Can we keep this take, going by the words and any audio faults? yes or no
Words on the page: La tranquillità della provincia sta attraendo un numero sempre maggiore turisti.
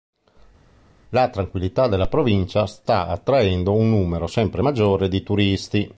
no